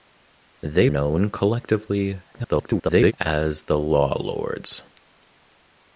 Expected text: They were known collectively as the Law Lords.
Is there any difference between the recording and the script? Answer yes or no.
yes